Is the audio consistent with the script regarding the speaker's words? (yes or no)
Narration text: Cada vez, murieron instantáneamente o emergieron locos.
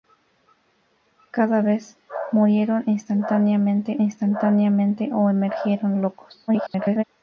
no